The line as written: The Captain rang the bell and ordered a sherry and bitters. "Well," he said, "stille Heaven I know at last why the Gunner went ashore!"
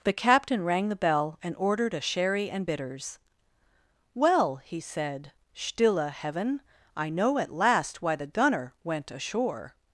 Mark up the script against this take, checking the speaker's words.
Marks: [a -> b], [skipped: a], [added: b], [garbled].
The Captain rang the bell and ordered a sherry and bitters. "Well," he said, "stille Heaven I know at last why the Gunner went ashore!"